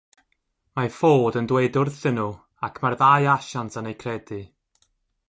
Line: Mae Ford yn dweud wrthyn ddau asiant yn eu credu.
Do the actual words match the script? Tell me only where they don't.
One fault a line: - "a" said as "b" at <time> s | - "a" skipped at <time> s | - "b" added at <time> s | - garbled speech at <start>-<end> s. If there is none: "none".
- "nhw ac mae'r" added at 2.2 s